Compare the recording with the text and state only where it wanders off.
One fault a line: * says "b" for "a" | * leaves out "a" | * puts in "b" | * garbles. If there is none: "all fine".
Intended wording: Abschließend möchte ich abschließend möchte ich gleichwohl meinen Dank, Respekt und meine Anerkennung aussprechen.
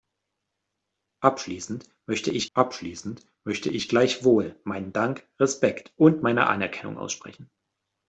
all fine